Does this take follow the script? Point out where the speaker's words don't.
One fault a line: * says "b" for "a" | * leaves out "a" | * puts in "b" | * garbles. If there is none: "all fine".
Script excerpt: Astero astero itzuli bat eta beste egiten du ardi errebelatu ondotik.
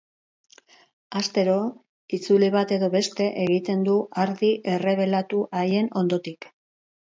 * leaves out "astero"
* says "edo" for "eta"
* puts in "haien"